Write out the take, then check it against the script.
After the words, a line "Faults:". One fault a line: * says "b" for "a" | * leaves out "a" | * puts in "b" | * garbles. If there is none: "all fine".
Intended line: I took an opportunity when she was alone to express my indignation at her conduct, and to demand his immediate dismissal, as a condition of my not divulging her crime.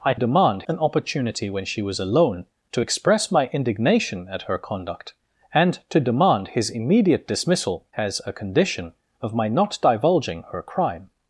I demand an opportunity when she was alone to express my indignation at her conduct, and to demand his immediate dismissal, as a condition of my not divulging her crime.
Faults:
* says "demand" for "took"